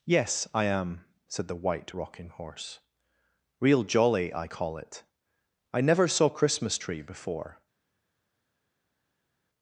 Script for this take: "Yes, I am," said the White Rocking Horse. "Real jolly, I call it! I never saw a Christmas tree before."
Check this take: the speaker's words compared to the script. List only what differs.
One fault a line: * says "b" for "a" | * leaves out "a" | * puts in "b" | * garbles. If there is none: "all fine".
* leaves out "a"